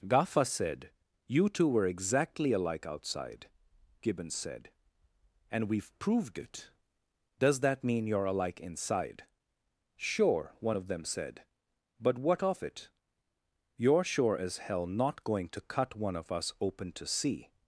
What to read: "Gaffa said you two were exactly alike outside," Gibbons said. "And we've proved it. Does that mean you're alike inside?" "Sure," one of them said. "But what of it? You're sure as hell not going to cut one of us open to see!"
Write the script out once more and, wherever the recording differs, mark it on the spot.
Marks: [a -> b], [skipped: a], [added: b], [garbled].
"Gaffa said you two were exactly alike outside," Gibbons said. "And we've proved it. Does that mean you're alike inside?" "Sure," one of them said. "But what of it? You're sure as hell not going to cut one of us open to see!"